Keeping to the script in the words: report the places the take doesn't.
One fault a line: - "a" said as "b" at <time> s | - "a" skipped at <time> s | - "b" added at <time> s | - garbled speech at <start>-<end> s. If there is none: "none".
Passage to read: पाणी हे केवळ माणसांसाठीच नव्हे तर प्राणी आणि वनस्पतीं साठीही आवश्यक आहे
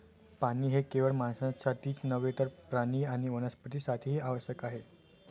none